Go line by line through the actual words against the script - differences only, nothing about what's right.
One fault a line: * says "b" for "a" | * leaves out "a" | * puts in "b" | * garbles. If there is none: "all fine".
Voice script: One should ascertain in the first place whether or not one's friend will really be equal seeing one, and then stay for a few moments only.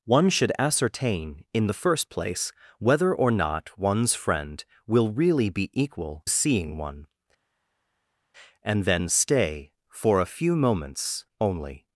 all fine